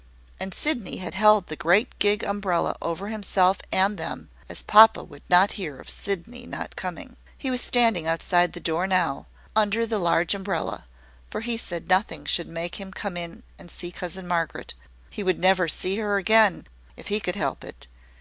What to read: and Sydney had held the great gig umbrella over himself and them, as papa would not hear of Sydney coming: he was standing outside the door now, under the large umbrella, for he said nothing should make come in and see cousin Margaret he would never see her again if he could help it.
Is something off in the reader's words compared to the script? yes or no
yes